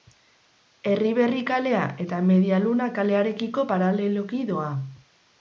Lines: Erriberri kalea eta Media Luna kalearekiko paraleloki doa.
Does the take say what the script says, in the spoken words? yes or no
yes